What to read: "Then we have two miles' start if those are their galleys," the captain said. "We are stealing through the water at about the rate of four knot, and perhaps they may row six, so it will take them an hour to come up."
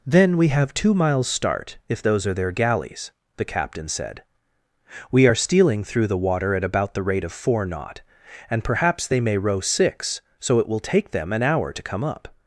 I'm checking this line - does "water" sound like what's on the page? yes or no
yes